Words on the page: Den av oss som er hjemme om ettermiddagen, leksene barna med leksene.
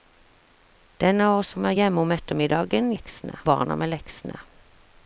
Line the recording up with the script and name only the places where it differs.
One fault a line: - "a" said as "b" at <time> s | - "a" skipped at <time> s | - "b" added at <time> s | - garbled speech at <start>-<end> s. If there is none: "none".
none